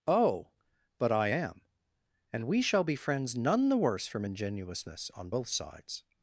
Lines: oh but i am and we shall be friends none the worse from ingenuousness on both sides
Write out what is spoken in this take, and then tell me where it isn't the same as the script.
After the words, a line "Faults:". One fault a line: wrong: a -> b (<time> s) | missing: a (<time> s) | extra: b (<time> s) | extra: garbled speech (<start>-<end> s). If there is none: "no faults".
oh but i am and we shall be friends none the worse from ingenuousness on both sides
Faults:
no faults